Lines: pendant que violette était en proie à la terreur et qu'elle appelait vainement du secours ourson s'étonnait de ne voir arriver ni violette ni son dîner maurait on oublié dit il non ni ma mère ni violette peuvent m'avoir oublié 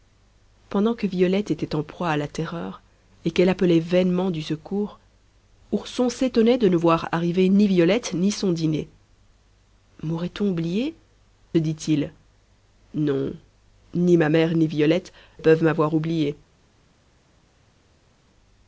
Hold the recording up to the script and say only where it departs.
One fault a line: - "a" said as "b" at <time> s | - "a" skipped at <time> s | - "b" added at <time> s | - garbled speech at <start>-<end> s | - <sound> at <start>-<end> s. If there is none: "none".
none